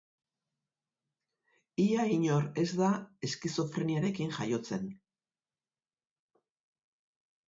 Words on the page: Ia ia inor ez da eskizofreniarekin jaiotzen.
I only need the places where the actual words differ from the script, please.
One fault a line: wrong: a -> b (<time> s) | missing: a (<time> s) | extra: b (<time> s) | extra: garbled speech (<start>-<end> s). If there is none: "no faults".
missing: ia (2.0 s)